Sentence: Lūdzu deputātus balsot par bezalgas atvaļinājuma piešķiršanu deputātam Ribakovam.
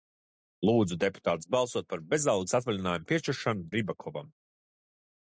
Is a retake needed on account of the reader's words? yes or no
yes